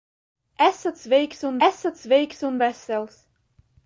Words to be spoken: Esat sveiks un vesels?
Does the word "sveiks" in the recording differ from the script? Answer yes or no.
no